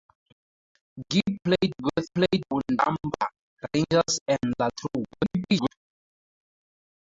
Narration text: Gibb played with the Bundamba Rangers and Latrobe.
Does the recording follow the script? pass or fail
fail